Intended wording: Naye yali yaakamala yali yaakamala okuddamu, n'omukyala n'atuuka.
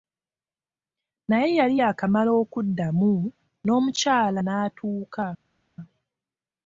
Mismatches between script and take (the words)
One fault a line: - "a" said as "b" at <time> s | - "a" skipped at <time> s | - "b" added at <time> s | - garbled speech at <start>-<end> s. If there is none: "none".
- "yali yaakamala" skipped at 2.3 s